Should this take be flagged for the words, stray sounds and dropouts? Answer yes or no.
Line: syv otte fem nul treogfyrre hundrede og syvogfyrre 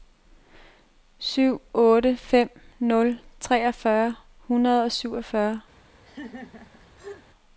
yes